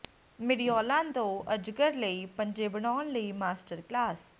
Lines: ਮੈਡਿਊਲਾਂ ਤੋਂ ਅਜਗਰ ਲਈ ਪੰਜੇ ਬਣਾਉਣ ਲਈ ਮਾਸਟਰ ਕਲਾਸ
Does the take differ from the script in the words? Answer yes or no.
no